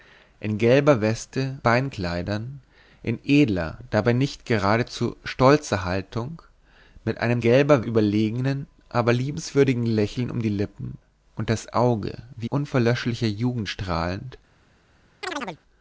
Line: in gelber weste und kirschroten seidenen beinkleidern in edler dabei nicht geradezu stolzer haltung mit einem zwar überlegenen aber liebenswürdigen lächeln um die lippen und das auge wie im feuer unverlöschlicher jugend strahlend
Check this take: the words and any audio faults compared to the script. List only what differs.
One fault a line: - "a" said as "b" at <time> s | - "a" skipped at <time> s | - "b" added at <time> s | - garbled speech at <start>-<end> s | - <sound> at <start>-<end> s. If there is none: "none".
- "und kirschroten seidenen" skipped at 1.6 s
- "zwar" said as "gelber" at 7.4 s
- "im feuer" skipped at 12.5 s
- chirp at 15.2-15.6 s